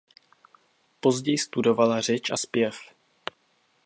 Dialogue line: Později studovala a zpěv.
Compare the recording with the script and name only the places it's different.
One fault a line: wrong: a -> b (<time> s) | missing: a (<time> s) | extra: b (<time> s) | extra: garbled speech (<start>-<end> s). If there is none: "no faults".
extra: řeč (2.0 s)